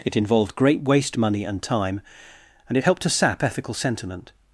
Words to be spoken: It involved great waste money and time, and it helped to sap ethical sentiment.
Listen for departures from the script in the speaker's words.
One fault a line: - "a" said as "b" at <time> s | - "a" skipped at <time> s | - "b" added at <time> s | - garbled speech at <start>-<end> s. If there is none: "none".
none